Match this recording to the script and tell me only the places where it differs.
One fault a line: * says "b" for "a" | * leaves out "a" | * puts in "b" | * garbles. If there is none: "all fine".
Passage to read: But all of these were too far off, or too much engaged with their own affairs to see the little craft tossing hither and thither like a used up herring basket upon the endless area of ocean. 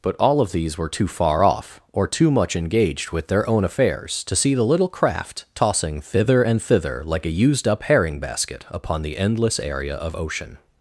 * says "thither" for "hither"